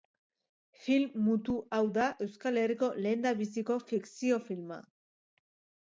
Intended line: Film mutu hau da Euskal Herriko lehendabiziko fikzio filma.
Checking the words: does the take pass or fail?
pass